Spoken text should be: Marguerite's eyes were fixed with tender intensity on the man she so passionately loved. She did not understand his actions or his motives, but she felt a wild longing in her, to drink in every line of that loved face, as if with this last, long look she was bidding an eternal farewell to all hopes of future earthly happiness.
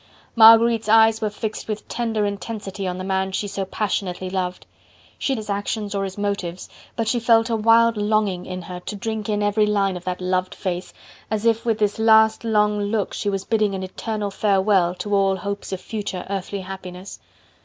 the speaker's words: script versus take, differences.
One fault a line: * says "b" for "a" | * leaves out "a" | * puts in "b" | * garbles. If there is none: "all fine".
* leaves out "did not understand"